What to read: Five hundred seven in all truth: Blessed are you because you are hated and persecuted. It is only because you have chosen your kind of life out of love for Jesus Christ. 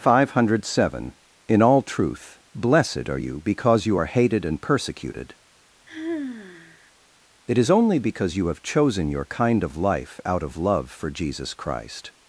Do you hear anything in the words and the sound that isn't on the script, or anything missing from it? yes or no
yes